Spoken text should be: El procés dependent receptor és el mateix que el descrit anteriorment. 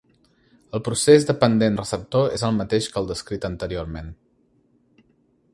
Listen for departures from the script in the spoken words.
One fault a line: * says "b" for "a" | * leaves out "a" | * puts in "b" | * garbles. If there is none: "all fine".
all fine